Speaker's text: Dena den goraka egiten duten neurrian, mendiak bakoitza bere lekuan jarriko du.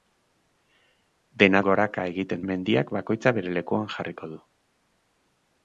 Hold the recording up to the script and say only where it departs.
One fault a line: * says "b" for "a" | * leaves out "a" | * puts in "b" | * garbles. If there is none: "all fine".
* leaves out "den"
* leaves out "duten neurrian"